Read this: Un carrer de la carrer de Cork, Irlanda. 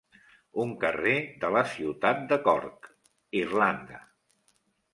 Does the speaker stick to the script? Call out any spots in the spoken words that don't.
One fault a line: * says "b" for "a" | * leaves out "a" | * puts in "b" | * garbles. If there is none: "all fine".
* says "ciutat" for "carrer"